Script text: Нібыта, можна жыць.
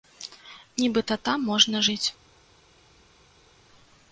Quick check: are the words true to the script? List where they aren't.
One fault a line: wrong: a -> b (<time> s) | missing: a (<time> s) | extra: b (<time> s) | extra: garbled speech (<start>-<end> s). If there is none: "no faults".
extra: там (1.3 s)